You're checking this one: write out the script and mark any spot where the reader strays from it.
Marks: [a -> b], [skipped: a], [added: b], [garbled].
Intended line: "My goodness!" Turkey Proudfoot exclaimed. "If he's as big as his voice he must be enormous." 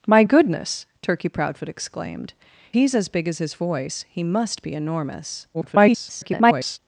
"My goodness!" Turkey Proudfoot exclaimed. [skipped: "If] he's as big as his voice he must be enormous." [garbled]